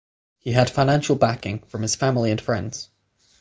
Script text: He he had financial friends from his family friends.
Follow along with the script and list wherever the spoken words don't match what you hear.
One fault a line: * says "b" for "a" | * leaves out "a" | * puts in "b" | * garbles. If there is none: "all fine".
* leaves out "he"
* says "backing" for "friends"
* puts in "and"